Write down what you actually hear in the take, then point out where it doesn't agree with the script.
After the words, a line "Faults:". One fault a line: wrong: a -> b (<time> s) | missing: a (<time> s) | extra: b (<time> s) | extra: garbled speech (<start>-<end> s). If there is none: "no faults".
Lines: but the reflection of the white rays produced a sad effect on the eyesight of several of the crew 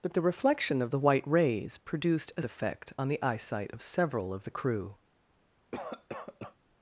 but the reflection of the white rays produced a effect on the eyesight of several of the crew
Faults:
missing: sad (2.4 s)